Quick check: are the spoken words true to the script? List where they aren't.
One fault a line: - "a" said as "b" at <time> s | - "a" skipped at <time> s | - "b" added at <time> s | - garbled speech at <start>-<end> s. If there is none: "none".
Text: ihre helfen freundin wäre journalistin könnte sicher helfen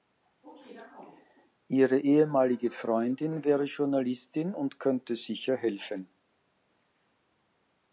- "helfen" said as "ehemalige" at 2.0 s
- "und" added at 4.5 s